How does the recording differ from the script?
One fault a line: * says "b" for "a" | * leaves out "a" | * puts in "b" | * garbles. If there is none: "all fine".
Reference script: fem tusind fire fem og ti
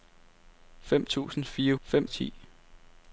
all fine